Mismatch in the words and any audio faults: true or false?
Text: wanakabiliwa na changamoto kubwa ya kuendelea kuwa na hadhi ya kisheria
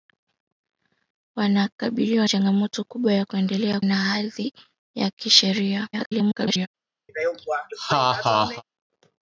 true